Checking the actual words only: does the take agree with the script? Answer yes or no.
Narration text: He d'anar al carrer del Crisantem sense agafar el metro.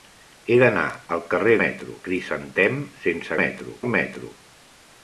no